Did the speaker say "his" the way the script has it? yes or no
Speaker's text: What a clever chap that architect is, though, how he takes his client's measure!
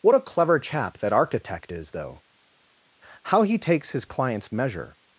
yes